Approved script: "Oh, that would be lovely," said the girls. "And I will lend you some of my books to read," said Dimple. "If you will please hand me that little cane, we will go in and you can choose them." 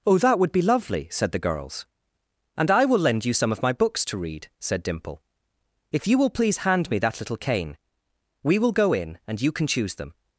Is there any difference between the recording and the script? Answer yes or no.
no